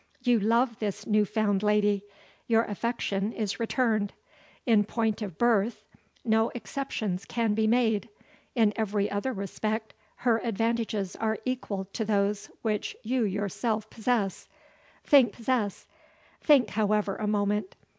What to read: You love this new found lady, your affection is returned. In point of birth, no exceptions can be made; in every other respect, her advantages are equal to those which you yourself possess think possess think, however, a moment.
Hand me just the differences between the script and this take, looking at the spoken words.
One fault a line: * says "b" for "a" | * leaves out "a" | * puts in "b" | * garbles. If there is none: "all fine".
all fine